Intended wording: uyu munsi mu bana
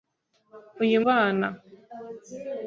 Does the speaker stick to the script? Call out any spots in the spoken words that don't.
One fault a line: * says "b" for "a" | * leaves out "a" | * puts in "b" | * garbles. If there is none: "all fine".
* leaves out "munsi mu"